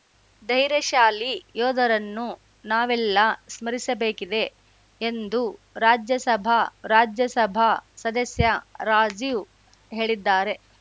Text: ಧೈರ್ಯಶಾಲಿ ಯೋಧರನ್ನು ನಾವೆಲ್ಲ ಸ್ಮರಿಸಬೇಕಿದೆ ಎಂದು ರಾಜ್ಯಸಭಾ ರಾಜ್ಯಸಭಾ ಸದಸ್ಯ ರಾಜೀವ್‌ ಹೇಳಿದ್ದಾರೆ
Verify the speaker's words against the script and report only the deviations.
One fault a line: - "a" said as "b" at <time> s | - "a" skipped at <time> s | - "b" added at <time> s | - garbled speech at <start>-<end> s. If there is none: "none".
none